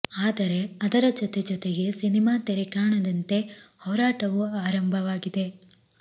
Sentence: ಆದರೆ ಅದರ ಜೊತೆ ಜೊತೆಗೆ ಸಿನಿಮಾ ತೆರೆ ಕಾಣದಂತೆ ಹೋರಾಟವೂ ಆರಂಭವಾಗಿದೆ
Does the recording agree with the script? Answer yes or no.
yes